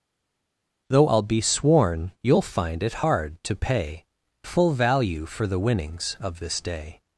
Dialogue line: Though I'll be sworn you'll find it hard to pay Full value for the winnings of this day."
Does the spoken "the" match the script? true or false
true